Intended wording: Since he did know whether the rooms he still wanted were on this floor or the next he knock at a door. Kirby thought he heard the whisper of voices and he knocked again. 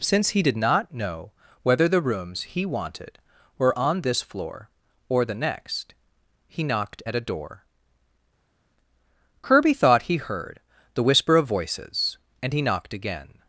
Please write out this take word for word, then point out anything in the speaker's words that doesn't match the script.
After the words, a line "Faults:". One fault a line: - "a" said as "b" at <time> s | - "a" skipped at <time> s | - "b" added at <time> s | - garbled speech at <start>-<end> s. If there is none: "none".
Since he did not know whether the rooms he wanted were on this floor or the next he knocked at a door. Kirby thought he heard the whisper of voices and he knocked again.
Faults:
- "not" added at 0.6 s
- "still" skipped at 2.6 s
- "knock" said as "knocked" at 6.6 s